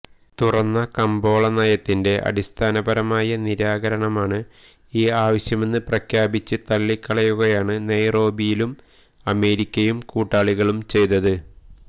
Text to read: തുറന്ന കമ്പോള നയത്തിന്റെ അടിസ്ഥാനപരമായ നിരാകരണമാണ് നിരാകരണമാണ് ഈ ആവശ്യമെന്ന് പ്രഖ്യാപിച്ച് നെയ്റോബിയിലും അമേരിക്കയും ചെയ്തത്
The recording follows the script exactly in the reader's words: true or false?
false